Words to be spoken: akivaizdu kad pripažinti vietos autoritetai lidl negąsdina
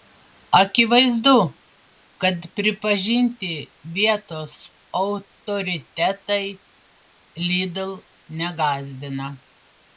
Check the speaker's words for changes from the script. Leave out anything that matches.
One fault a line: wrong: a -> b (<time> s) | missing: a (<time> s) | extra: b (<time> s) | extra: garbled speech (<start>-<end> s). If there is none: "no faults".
no faults